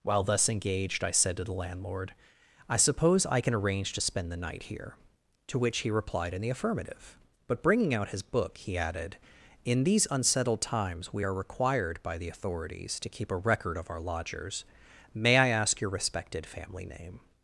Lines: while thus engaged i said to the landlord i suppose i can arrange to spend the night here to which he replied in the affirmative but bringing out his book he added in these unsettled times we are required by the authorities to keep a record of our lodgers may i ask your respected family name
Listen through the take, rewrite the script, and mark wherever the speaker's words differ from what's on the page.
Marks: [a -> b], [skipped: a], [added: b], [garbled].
while thus engaged i said to the landlord i suppose i can arrange to spend the night here to which he replied in the affirmative but bringing out his book he added in these unsettled times we are required by the authorities to keep a record of our lodgers may i ask your respected family name